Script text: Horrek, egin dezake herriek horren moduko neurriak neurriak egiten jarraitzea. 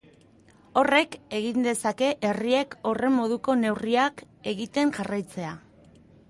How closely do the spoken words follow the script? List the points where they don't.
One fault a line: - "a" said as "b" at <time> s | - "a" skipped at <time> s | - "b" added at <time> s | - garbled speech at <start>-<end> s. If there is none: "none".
- "neurriak" skipped at 4.2 s